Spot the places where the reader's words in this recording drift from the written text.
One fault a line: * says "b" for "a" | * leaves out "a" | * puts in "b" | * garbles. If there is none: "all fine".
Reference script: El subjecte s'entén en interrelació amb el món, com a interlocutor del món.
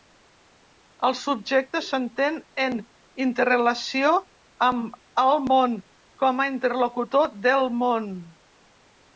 all fine